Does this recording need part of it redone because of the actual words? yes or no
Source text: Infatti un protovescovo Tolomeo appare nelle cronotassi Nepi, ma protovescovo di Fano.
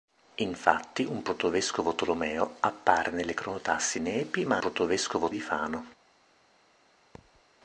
no